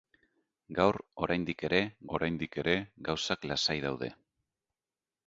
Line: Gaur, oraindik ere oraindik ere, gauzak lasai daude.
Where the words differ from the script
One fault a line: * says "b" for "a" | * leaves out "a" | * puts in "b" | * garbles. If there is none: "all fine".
all fine